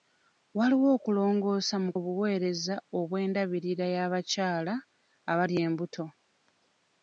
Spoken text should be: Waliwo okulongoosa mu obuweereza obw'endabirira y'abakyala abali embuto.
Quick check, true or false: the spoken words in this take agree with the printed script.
true